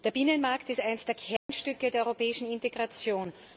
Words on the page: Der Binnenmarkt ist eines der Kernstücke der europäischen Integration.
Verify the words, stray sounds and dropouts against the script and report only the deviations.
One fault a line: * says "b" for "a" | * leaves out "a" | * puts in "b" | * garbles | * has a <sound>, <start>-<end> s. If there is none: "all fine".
* has a dropout, 1.4-1.5 s